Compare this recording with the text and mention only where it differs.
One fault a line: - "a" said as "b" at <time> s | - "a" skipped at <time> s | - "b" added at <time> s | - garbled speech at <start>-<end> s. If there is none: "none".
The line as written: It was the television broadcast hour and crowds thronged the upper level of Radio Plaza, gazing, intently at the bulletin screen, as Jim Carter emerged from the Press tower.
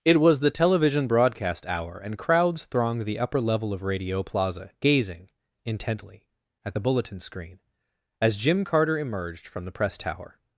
none